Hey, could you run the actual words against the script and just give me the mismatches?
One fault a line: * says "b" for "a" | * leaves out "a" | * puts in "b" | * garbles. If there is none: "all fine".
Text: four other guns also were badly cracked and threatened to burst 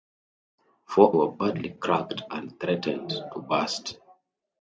* leaves out "other guns also"